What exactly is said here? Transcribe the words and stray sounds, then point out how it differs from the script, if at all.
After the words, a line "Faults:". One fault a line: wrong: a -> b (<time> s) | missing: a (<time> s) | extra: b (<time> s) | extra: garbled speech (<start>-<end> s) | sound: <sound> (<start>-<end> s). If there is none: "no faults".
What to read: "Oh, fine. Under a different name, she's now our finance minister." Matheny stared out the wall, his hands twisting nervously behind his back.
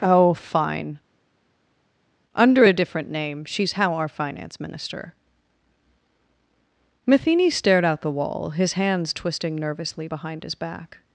"Oh, fine. Under a different name, she's how our finance minister." Matheny stared out the wall, his hands twisting nervously behind his back.
Faults:
wrong: now -> how (3.7 s)